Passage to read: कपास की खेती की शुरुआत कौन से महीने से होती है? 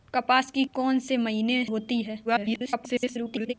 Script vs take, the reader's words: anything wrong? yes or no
yes